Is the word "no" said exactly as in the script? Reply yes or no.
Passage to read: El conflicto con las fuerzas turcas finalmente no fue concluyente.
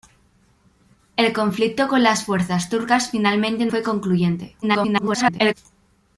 no